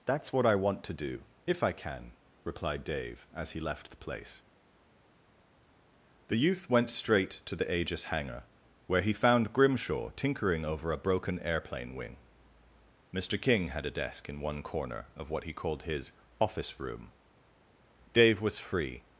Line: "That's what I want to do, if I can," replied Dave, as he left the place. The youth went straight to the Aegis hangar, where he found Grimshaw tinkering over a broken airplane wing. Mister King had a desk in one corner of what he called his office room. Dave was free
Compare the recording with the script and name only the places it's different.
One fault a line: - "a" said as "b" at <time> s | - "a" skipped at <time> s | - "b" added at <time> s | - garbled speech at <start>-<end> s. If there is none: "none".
none